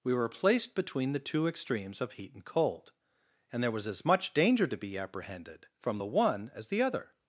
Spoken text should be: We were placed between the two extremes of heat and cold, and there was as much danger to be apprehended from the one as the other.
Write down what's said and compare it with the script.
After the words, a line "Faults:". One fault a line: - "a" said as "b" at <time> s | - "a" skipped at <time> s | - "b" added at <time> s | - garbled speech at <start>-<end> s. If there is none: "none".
We were placed between the two extremes of heat and cold, and there was as much danger to be apprehended from the one as the other.
Faults:
none